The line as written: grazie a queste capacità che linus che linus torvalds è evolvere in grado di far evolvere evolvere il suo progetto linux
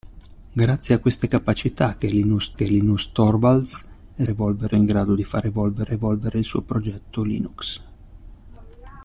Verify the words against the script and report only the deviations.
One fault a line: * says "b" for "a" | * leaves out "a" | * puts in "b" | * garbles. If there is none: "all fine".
all fine